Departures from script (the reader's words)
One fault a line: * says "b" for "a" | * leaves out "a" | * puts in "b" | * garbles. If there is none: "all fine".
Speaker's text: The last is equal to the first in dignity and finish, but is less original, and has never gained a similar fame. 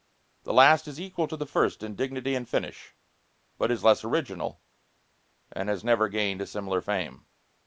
all fine